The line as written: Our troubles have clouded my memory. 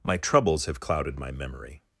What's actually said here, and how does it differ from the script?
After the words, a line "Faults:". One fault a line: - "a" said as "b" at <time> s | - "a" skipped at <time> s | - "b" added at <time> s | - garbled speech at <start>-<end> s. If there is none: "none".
My troubles have clouded my memory.
Faults:
- "Our" said as "My" at 0.0 s